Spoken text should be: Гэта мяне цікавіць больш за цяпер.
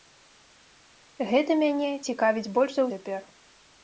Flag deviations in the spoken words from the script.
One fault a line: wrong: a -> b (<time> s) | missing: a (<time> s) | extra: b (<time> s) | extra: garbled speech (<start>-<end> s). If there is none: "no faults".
no faults